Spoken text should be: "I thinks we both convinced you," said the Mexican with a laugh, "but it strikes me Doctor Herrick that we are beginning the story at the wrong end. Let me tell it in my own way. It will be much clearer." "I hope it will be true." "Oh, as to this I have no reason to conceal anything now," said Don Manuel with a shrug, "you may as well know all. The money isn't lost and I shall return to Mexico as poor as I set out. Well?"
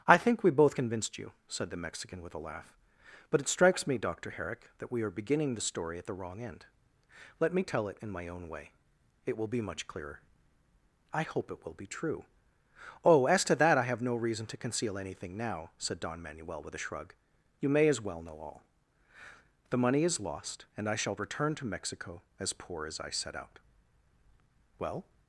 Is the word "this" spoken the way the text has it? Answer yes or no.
no